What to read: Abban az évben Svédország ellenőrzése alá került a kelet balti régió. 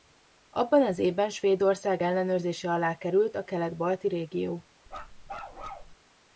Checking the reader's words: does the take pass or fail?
pass